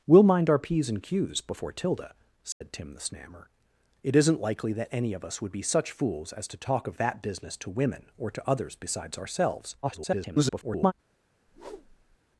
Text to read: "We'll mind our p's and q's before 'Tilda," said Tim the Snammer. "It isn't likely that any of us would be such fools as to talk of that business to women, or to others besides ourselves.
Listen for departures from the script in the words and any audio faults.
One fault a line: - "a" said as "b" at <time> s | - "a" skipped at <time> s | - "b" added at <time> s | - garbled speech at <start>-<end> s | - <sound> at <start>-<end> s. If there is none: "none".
- dropout at 2.5-2.6 s
- garbled speech at 9.8-10.9 s
- whoosh at 11.5-12.2 s